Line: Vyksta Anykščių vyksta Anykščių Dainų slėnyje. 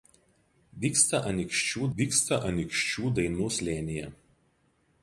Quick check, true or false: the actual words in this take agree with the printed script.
true